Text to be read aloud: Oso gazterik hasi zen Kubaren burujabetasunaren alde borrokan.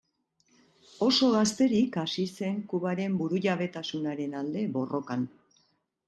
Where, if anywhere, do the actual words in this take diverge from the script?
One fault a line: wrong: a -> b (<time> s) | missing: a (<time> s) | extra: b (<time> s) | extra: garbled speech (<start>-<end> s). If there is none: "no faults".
no faults